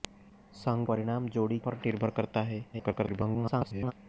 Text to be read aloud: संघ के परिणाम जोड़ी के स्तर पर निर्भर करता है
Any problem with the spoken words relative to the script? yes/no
yes